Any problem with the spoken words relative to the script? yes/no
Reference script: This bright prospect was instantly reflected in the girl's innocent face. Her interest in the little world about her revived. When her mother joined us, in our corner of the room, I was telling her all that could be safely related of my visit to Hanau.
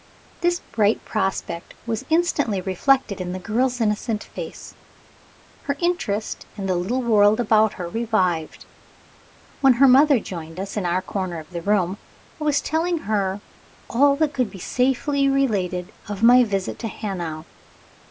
no